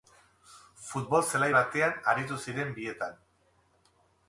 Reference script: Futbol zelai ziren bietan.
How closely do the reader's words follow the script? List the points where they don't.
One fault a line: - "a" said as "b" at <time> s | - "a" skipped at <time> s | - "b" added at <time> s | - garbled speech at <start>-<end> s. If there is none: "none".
- "batean aritu" added at 1.6 s